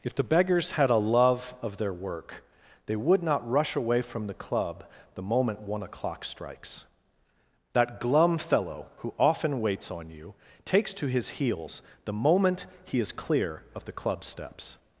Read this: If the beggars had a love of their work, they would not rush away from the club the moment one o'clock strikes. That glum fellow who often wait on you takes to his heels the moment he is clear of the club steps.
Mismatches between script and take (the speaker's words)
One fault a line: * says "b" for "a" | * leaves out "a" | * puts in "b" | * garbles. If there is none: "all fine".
* says "waits" for "wait"